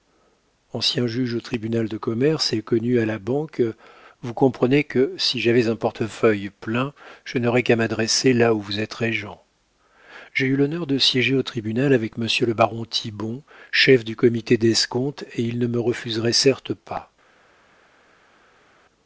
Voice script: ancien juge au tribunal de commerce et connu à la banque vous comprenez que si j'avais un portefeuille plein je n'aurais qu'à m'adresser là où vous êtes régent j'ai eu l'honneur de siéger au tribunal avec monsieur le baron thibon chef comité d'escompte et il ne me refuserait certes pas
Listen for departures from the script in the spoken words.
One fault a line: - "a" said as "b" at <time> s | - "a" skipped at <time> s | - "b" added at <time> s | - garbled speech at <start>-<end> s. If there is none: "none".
- "du" added at 14.0 s